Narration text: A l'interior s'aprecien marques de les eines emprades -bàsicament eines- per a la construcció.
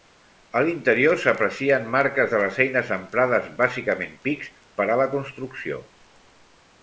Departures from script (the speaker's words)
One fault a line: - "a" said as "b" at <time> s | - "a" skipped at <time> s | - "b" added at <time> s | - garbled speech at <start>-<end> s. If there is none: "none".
- "eines" said as "pics" at 4.3 s